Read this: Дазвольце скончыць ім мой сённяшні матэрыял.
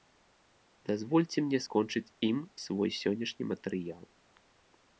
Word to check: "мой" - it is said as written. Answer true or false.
false